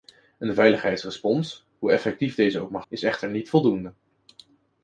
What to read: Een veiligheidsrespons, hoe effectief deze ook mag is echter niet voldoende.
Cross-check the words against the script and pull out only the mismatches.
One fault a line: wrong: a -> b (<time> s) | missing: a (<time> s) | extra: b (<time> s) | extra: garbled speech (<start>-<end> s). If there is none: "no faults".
no faults